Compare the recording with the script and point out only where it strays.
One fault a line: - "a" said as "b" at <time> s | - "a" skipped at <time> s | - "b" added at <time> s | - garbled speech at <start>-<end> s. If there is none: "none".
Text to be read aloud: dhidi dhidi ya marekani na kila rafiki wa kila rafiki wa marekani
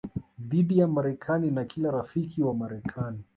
- "dhidi" skipped at 0.8 s
- "kila rafiki wa" skipped at 2.5 s